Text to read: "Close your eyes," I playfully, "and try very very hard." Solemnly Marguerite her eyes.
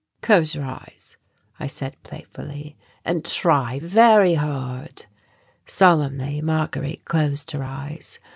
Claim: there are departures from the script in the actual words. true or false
true